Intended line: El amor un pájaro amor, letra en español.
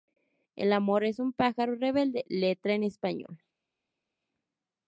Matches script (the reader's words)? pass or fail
fail